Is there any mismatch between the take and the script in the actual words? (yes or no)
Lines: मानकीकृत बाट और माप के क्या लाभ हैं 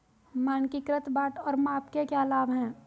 no